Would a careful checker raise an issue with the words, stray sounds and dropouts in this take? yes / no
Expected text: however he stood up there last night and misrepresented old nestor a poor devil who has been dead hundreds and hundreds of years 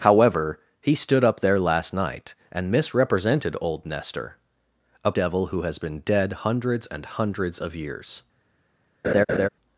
yes